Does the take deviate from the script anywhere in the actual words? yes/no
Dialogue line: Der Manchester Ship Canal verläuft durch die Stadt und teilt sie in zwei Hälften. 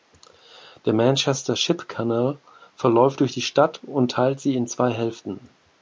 no